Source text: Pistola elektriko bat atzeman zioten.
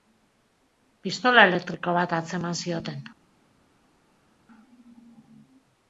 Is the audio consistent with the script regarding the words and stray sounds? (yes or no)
yes